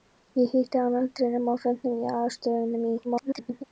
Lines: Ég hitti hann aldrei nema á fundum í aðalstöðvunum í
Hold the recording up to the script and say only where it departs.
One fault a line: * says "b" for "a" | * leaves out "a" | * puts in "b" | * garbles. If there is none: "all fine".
* garbles